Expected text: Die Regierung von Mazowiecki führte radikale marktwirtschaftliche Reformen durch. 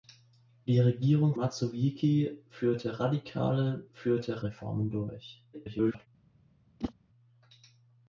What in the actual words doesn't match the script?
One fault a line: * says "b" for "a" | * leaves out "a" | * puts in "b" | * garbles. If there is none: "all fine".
* leaves out "von"
* says "führte" for "marktwirtschaftliche"
* garbles